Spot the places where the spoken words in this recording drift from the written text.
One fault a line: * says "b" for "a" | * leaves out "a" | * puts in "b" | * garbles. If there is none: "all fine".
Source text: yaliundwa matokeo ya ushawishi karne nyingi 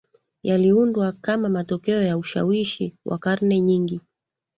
* puts in "kama"
* puts in "wa"